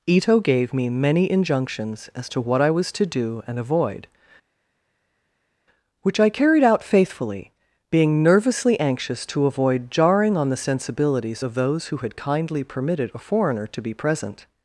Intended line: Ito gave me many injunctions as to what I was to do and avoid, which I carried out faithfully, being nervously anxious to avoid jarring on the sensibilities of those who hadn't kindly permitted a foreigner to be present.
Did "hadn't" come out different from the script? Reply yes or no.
yes